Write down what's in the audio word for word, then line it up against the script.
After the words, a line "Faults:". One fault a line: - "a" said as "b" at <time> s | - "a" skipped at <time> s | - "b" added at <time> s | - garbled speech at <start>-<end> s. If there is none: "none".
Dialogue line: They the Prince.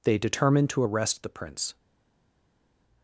They determined to arrest the Prince.
Faults:
- "determined to arrest" added at 0.2 s